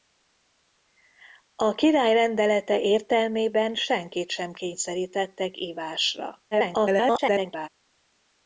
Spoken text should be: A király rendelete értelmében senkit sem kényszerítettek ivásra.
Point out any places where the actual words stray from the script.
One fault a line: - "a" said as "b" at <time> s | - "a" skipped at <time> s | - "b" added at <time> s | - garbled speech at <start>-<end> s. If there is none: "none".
- garbled speech at 6.5-7.7 s